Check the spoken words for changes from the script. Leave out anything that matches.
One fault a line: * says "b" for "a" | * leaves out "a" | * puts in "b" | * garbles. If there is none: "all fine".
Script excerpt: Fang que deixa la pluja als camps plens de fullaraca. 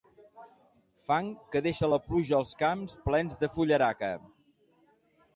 all fine